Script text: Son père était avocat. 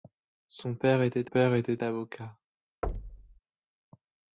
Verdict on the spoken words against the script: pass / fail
fail